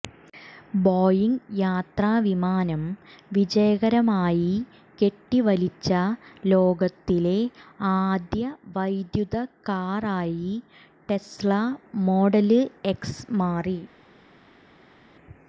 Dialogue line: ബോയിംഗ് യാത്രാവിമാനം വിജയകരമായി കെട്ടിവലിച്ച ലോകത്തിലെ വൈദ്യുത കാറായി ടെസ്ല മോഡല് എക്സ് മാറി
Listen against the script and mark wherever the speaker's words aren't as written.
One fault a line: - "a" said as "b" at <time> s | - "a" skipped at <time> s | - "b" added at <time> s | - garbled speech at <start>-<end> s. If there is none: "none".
- "ആദ്യ" added at 7.9 s